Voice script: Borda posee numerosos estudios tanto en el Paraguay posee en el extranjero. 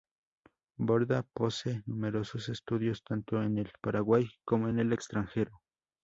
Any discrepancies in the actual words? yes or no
yes